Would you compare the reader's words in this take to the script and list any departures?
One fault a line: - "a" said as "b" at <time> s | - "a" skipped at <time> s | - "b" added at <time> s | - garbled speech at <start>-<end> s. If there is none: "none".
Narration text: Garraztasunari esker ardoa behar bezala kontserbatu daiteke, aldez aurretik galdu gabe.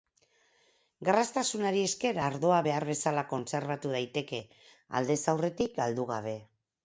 none